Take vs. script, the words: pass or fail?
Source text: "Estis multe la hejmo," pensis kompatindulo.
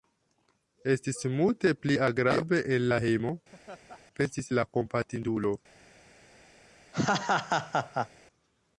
fail